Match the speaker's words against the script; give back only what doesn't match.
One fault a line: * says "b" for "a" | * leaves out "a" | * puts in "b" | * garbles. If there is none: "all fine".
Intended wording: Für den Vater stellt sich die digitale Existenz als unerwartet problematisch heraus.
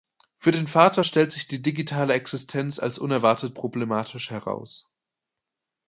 all fine